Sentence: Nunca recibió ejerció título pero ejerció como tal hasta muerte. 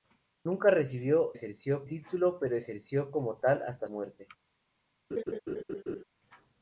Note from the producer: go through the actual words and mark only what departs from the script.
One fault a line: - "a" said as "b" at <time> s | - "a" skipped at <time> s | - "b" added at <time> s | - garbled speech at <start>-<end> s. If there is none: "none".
none